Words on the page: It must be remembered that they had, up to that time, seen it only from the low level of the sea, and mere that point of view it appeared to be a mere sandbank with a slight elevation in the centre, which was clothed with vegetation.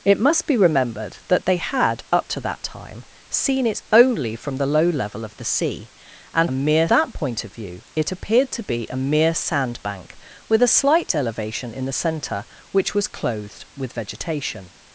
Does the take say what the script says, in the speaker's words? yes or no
yes